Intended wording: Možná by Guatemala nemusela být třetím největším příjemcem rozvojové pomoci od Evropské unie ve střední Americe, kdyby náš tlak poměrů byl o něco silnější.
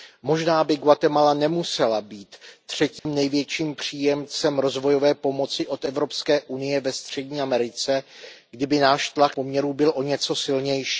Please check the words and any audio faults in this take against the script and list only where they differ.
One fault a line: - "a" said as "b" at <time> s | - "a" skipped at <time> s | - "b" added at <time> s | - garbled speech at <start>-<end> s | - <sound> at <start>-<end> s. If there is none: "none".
- dropout at 3.0-3.1 s